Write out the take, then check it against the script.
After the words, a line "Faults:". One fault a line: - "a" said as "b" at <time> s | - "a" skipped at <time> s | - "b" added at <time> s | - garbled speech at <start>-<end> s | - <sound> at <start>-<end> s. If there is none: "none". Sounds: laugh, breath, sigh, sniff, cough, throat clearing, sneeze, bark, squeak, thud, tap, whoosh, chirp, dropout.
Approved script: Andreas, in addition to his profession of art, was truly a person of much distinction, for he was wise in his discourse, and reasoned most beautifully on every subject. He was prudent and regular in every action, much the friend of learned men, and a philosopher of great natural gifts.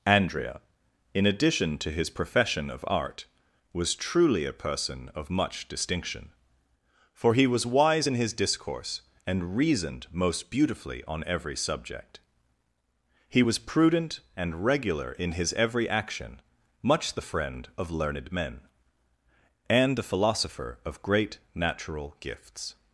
Andrea, in addition to his profession of art, was truly a person of much distinction, for he was wise in his discourse, and reasoned most beautifully on every subject. He was prudent and regular in his every action, much the friend of learned men, and a philosopher of great natural gifts.
Faults:
- "Andreas" said as "Andrea" at 0.1 s
- "his" added at 15.3 s